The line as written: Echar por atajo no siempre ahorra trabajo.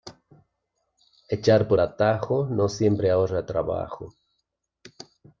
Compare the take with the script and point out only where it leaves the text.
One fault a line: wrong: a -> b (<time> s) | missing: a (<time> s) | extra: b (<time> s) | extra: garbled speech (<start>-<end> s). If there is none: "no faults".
no faults